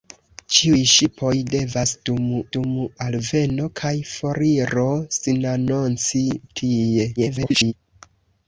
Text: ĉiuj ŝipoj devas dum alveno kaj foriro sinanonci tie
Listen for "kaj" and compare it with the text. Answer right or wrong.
right